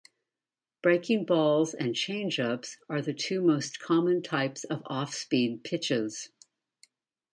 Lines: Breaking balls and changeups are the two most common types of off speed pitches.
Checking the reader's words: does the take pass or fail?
pass